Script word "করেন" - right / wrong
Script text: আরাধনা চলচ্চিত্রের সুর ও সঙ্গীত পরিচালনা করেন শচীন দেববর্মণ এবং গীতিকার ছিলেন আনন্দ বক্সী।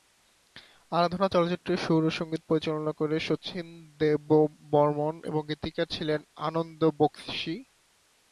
right